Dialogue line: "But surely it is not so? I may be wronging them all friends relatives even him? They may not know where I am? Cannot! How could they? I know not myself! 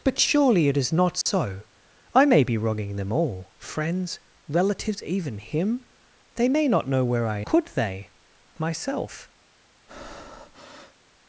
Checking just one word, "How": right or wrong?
wrong